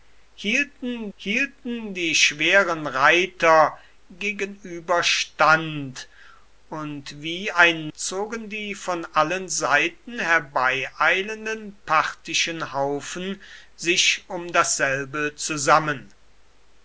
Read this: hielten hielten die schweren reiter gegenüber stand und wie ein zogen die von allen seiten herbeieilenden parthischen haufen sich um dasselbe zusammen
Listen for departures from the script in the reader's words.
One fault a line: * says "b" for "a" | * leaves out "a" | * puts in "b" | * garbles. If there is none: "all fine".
all fine